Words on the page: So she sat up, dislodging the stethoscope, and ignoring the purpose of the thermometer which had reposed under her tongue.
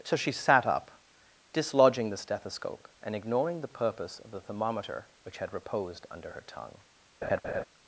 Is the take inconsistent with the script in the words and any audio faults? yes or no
yes